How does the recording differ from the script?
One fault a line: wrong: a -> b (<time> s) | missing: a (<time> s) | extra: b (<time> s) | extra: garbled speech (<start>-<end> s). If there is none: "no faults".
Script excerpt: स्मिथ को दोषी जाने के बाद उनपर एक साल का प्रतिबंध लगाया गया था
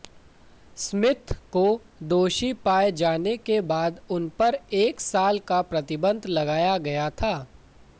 extra: पाए (2.6 s)